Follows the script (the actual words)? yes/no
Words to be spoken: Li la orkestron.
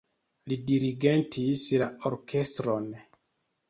no